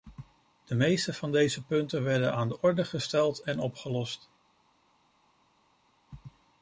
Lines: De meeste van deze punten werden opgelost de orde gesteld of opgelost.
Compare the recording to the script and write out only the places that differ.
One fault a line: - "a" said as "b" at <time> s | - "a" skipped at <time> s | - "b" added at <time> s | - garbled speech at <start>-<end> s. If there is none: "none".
- "opgelost" said as "aan" at 2.3 s
- "of" said as "en" at 3.4 s